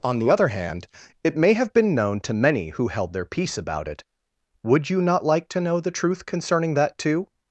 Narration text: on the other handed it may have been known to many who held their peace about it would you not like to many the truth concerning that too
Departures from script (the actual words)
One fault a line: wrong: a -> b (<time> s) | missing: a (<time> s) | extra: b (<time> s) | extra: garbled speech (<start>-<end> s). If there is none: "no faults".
wrong: handed -> hand (0.5 s)
wrong: many -> know (5.6 s)